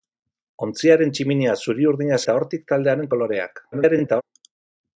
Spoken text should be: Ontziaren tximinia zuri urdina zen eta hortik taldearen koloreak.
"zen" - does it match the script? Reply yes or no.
no